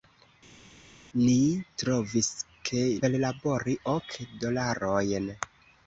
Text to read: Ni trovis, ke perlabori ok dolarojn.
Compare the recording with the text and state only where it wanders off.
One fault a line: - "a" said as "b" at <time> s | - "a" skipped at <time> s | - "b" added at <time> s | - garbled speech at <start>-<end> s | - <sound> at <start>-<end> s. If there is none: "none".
none